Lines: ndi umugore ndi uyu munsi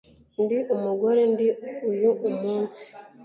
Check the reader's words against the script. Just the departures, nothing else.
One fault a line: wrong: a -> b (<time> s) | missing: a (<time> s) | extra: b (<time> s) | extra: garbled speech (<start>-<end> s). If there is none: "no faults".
no faults